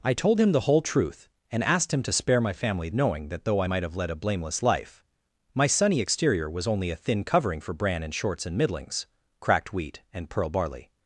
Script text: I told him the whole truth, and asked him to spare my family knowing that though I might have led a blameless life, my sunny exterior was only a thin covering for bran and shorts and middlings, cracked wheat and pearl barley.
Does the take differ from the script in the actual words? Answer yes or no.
no